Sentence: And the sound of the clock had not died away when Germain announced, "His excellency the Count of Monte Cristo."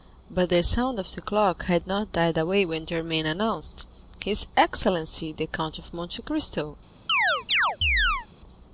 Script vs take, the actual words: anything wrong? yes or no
yes